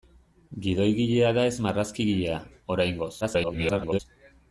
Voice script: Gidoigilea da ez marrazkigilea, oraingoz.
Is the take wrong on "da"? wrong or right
right